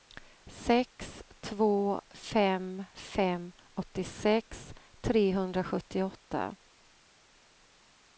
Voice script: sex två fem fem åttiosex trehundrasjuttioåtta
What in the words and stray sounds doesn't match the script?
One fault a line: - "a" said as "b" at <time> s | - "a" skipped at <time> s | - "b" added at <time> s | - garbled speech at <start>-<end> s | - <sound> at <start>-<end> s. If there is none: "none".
none